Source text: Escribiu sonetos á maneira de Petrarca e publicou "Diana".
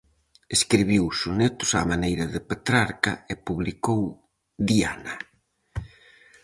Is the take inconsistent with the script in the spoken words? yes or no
no